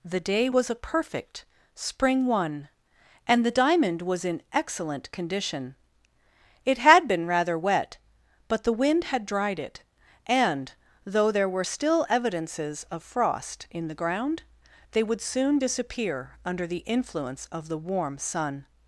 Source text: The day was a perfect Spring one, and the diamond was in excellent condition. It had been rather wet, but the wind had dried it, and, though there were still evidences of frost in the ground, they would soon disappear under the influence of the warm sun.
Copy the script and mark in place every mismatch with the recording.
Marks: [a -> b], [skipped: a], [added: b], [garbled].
The day was a perfect Spring one, and the diamond was in excellent condition. It had been rather wet, but the wind had dried it, and, though there were still evidences of frost in the ground, they would soon disappear under the influence of the warm sun.